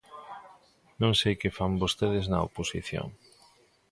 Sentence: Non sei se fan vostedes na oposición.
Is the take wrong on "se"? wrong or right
wrong